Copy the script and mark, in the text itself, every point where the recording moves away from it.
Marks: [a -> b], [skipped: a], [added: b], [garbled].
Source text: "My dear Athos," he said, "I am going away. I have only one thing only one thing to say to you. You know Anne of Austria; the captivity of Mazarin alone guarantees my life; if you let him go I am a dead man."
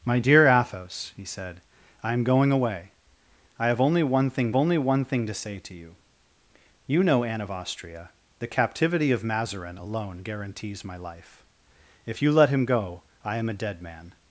"My dear Athos," he said, "I am going away. I have only one thing only one thing to say to you. You know Anne of Austria; the captivity of Mazarin alone guarantees my life; if you let him go I am a dead man."